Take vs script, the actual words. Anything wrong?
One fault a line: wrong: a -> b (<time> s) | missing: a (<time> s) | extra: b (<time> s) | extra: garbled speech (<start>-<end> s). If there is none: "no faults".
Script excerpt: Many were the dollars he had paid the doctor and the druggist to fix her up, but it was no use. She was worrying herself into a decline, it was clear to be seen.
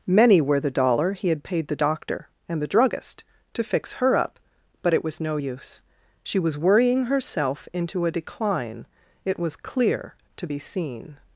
wrong: dollars -> dollar (0.7 s)